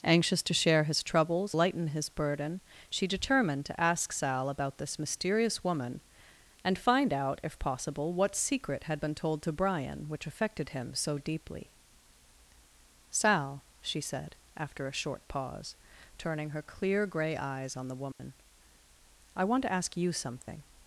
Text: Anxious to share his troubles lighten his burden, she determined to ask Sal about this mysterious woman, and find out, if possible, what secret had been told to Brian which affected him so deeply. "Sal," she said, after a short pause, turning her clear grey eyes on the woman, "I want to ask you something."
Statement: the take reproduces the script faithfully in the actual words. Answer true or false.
true